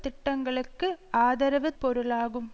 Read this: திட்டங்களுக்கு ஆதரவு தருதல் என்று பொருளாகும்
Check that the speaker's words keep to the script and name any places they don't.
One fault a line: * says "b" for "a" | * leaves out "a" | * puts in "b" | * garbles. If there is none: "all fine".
* leaves out "தருதல் என்று"